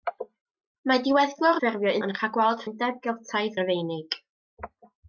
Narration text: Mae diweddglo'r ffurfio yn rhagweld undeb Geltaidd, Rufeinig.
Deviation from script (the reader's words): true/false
false